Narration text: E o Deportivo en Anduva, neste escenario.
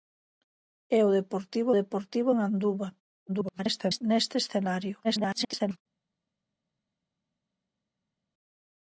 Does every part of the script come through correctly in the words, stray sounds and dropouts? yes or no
no